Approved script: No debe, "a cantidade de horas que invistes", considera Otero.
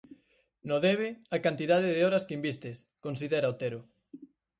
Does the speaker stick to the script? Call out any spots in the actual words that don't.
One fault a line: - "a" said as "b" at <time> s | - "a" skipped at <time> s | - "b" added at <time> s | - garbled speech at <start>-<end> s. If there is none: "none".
none